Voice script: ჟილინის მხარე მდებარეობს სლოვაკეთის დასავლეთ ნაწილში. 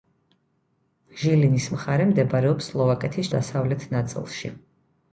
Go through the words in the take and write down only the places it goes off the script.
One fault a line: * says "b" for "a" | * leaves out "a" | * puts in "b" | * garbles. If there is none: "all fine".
all fine